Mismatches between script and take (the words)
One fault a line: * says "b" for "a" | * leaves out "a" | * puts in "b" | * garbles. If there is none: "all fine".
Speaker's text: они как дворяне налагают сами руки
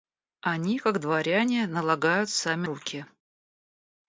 all fine